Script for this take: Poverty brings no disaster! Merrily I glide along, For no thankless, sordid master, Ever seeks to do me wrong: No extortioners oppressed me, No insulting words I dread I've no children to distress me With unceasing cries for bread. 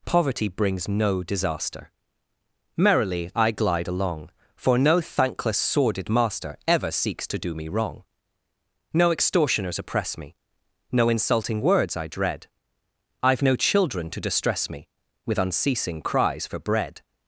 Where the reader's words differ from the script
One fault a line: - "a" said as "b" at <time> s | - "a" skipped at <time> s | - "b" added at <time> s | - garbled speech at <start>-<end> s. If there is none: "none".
- "oppressed" said as "oppress" at 9.8 s